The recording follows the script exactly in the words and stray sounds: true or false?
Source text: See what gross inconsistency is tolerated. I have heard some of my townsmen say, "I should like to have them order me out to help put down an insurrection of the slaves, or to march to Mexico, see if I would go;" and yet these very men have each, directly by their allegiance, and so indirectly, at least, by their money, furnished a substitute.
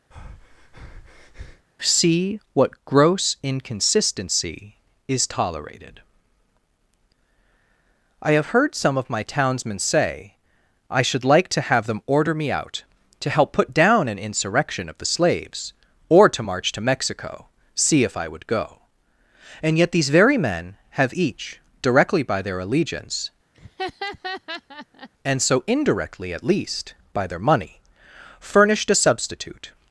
false